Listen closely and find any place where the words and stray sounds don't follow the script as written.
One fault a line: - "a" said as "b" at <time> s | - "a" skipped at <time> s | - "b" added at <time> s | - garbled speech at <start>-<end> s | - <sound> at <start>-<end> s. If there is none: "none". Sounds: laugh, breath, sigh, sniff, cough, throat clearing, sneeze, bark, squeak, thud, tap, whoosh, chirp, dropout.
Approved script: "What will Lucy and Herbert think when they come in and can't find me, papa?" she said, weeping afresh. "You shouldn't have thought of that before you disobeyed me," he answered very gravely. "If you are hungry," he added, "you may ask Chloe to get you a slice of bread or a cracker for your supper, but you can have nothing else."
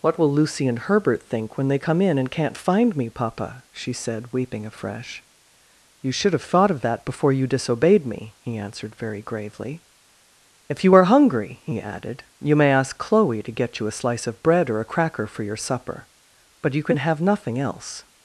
- "shouldn't" said as "should" at 6.1 s